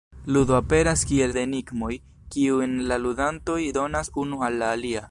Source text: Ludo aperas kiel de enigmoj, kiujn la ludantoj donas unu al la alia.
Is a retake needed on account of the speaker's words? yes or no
no